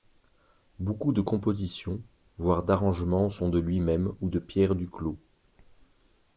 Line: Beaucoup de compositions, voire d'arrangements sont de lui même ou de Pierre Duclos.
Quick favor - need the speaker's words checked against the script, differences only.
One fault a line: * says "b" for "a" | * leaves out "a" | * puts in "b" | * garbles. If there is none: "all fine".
all fine